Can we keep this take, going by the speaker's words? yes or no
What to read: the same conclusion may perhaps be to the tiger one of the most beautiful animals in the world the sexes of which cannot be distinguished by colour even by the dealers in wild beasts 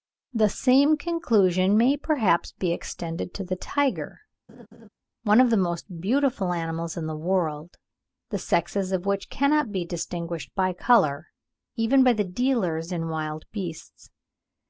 no